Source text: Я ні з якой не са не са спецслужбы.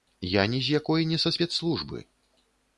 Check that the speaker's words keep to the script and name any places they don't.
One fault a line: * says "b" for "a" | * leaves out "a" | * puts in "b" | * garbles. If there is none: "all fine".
* leaves out "не са"